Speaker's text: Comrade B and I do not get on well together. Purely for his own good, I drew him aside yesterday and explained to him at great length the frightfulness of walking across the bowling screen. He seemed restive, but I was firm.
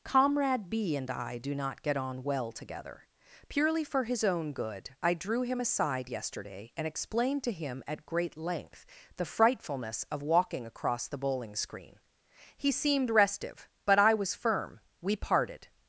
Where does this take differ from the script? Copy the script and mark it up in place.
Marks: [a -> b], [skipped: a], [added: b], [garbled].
Comrade B and I do not get on well together. Purely for his own good, I drew him aside yesterday and explained to him at great length the frightfulness of walking across the bowling screen. He seemed restive, but I was firm. [added: We parted]